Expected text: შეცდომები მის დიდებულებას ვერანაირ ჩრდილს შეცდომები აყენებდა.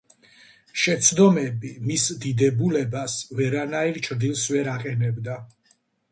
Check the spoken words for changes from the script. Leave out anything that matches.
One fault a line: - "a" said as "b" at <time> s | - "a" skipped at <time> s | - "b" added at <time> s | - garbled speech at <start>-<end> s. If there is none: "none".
- "შეცდომები" said as "ვერ" at 4.6 s